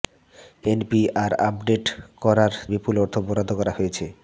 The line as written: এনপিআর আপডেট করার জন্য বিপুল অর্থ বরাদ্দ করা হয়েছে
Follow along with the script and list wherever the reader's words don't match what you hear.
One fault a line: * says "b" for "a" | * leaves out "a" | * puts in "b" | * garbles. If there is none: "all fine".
* leaves out "জন্য"